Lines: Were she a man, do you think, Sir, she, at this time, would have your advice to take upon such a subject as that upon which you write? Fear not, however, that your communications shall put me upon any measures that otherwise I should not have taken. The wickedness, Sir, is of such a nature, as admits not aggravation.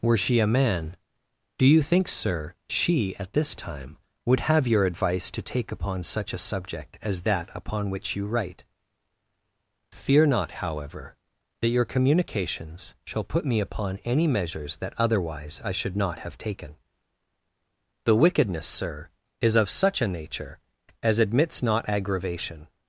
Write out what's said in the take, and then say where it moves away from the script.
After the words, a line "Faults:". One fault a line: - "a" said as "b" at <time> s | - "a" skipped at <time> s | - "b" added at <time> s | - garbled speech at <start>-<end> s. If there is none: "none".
Were she a man, do you think, Sir, she, at this time, would have your advice to take upon such a subject as that upon which you write? Fear not, however, that your communications shall put me upon any measures that otherwise I should not have taken. The wickedness, Sir, is of such a nature, as admits not aggravation.
Faults:
none